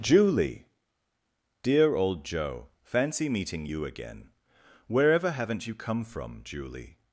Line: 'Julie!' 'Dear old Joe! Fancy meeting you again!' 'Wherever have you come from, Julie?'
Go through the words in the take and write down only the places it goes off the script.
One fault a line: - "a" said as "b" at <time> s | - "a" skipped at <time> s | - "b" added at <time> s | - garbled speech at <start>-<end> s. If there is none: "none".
- "have" said as "haven't" at 5.3 s